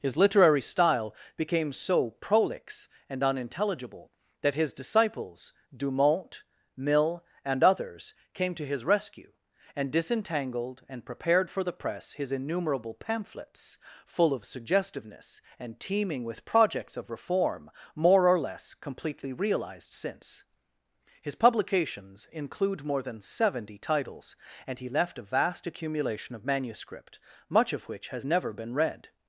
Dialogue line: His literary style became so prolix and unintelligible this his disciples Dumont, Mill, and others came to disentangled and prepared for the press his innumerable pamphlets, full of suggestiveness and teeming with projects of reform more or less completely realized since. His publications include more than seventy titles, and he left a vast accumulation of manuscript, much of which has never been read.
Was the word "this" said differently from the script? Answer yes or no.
yes